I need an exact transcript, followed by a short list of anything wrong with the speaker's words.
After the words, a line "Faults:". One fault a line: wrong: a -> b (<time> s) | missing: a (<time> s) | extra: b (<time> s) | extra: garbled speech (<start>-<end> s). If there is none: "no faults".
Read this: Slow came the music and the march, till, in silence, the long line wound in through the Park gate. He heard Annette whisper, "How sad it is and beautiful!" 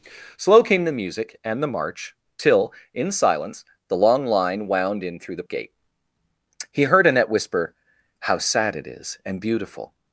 Slow came the music and the march, till, in silence, the long line wound in through the Gate. He heard Annette whisper, "How sad it is and beautiful!"
Faults:
missing: Park (5.4 s)